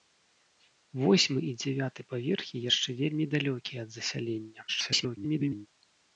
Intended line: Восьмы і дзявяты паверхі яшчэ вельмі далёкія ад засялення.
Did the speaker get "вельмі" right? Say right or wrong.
right